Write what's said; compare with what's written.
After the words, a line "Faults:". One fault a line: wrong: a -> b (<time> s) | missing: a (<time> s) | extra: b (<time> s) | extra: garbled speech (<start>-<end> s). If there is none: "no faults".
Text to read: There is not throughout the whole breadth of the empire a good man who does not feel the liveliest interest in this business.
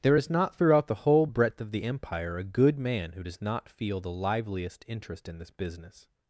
There is not throughout the whole breadth of the empire a good man who does not feel the liveliest interest in this business.
Faults:
no faults